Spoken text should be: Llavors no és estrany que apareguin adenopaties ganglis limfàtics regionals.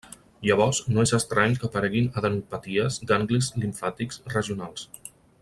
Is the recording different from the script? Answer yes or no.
no